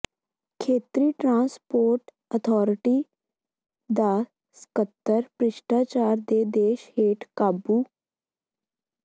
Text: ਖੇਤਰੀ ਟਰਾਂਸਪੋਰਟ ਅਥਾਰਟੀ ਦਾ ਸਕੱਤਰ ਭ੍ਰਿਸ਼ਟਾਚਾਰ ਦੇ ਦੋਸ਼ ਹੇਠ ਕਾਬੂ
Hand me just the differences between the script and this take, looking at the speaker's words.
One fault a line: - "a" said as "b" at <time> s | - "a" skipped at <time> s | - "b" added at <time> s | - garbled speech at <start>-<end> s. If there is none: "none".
none